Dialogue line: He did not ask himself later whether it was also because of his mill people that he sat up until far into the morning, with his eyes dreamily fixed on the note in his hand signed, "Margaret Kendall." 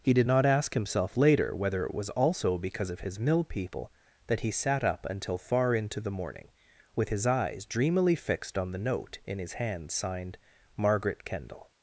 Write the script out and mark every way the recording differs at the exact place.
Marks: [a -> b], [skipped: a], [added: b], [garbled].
He did not ask himself later whether it was also because of his mill people that he sat up until far into the morning, with his eyes dreamily fixed on the note in his hand signed, "Margaret Kendall."